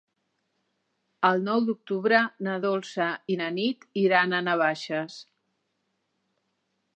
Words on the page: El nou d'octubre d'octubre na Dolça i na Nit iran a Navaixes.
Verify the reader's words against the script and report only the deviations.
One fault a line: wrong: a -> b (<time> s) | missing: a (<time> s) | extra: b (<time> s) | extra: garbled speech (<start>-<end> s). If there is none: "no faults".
missing: d'octubre (2.2 s)